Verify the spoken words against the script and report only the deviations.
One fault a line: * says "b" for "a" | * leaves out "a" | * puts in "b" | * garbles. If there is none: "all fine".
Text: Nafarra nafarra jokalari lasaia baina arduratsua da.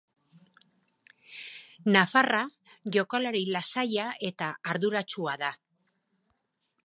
* leaves out "nafarra"
* says "eta" for "baina"